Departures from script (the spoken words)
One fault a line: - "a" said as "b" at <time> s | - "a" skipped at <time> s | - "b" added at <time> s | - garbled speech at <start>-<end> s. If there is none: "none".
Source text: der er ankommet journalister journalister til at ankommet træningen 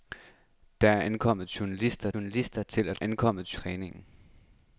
none